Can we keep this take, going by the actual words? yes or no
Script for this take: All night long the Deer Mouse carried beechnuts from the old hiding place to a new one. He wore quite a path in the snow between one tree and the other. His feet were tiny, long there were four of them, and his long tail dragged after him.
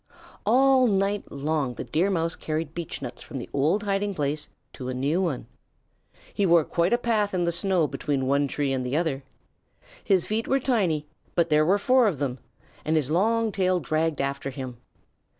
no